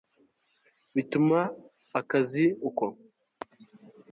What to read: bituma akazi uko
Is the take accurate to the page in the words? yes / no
yes